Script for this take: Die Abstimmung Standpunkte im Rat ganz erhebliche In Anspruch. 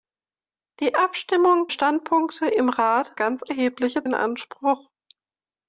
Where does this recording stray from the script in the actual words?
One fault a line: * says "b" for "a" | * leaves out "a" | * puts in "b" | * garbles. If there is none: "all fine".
all fine